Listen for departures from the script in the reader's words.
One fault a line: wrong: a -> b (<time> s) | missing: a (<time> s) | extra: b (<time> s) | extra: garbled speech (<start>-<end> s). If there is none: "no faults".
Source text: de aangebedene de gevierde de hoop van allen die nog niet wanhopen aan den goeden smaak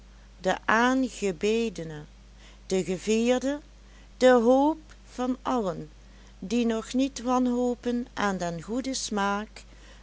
no faults